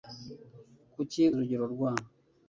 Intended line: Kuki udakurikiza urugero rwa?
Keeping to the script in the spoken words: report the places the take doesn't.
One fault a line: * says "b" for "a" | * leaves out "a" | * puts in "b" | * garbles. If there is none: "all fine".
* leaves out "udakurikiza"